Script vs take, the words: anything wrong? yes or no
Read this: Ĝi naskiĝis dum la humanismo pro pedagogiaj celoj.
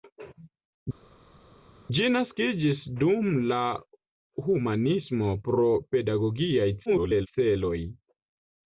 yes